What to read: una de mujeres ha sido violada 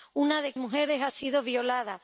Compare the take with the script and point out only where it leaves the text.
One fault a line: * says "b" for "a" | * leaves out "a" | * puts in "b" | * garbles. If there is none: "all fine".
all fine